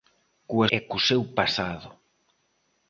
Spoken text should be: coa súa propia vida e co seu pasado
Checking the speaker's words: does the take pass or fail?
fail